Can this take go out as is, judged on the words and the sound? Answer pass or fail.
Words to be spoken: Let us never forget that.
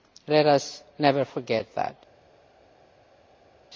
pass